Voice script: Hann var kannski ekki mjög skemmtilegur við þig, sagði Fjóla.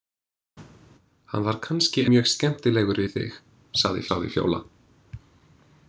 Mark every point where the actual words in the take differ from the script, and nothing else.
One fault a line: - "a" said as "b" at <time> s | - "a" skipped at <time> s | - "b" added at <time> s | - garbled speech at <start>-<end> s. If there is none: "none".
- "ekki" skipped at 2.0 s
- "sagði" added at 4.1 s